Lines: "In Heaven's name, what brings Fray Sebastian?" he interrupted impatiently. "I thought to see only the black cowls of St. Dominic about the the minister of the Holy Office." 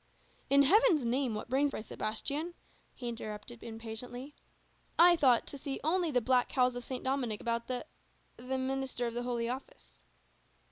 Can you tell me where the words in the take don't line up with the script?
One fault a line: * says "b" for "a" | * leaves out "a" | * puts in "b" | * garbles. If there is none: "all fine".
all fine